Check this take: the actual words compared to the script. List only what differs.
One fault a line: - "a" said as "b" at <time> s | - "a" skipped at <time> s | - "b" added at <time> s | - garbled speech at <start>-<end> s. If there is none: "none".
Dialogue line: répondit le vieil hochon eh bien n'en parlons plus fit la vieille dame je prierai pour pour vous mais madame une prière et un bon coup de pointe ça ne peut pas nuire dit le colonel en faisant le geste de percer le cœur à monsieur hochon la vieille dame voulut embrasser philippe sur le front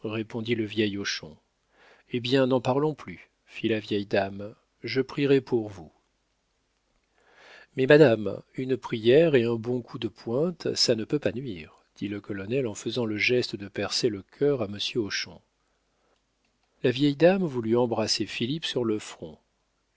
- "pour" skipped at 5.7 s